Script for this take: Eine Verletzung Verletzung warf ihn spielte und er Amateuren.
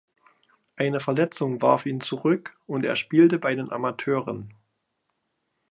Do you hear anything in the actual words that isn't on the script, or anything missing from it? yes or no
yes